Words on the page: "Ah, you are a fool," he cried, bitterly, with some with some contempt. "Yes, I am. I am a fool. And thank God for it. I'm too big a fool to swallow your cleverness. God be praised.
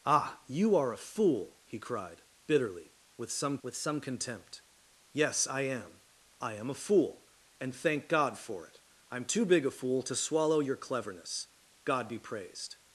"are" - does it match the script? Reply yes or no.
yes